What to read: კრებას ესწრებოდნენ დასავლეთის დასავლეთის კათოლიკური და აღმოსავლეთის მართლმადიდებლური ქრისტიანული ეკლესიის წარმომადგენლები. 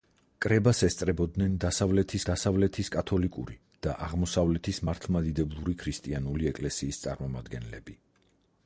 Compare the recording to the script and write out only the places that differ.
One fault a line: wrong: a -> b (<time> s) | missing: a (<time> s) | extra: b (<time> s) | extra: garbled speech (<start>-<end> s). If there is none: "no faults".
no faults